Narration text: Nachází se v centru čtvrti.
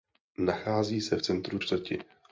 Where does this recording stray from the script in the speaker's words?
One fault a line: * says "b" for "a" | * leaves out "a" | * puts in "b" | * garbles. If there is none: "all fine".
all fine